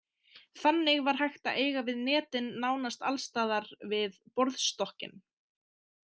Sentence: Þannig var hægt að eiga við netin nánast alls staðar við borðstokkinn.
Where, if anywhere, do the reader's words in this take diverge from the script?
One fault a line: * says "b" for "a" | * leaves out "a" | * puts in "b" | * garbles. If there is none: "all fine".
all fine